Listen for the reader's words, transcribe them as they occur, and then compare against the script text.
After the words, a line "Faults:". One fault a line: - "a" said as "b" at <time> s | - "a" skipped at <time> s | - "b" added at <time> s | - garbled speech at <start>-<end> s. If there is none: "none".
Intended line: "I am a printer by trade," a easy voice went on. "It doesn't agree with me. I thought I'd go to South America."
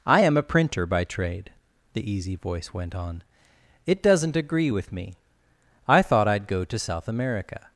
"I am a printer by trade," the easy voice went on. "It doesn't agree with me. I thought I'd go to South America."
Faults:
- "a" said as "the" at 1.9 s